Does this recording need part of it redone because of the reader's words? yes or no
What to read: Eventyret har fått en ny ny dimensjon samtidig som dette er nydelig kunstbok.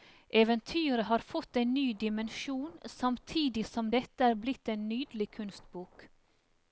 yes